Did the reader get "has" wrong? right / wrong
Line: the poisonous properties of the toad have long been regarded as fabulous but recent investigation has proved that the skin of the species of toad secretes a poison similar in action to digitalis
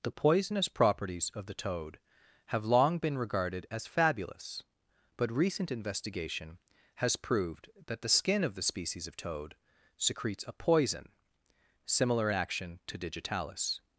right